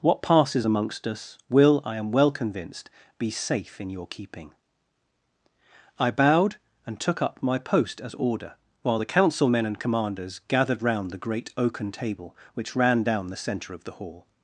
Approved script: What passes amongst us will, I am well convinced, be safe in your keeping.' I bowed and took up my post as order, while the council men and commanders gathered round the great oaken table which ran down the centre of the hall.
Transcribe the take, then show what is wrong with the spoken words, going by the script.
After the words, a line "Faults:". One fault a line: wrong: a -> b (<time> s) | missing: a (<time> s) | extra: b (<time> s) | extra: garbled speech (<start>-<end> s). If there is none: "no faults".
What passes amongst us will, I am well convinced, be safe in your keeping.' I bowed and took up my post as order, while the council men and commanders gathered round the great oaken table which ran down the centre of the hall.
Faults:
no faults